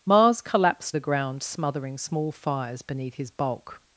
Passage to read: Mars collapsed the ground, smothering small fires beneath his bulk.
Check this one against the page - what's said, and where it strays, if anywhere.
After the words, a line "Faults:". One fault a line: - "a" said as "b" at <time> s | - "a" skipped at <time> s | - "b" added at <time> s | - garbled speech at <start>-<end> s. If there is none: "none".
Mars collapsed the ground, smothering small fires beneath his bulk.
Faults:
none